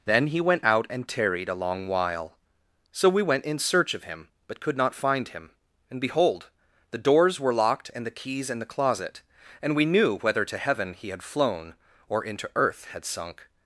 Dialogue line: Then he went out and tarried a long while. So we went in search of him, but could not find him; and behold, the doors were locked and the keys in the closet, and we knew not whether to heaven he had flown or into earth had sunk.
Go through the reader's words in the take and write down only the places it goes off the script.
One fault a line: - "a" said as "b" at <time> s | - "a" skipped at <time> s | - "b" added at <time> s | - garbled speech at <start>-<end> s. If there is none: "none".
- "not" skipped at 10.2 s